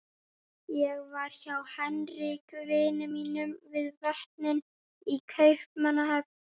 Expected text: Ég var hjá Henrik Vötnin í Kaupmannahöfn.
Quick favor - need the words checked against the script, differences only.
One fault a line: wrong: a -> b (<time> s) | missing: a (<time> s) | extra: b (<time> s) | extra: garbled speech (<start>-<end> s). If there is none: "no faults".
extra: vini mínum við (2.7 s)